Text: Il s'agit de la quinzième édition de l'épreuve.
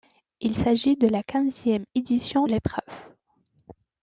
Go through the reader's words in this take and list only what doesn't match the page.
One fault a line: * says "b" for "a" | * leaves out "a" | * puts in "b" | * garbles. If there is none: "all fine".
* leaves out "de"